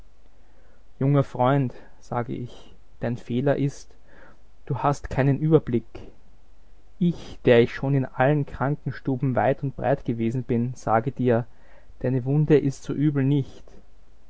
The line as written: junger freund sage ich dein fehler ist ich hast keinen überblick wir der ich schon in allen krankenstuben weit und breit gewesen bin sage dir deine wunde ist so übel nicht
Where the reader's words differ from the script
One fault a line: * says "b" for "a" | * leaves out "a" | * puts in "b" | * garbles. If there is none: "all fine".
* says "du" for "ich"
* says "ich" for "wir"